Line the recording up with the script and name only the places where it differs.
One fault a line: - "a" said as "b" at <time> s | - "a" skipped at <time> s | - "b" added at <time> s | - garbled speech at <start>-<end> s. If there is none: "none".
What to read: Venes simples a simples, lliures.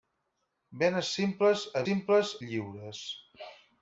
none